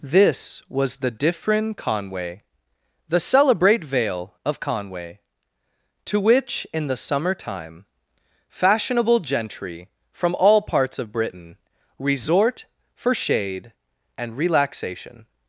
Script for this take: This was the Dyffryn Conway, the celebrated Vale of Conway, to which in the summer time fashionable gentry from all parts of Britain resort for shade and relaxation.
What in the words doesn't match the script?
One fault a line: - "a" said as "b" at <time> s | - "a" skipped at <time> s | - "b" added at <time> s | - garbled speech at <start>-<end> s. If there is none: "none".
- "celebrated" said as "celebrate" at 3.2 s